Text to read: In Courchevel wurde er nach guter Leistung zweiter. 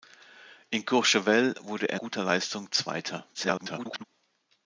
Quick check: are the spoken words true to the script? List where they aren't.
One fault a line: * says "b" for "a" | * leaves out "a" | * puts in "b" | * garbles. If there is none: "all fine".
* leaves out "nach"
* garbles